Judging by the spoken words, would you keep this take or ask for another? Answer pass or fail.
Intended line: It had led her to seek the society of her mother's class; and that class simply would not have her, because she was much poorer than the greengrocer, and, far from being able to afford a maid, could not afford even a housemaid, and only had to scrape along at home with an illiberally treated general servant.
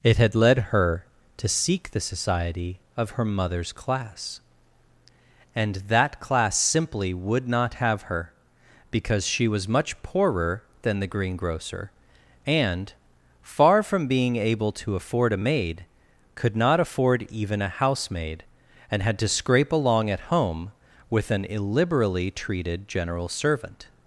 fail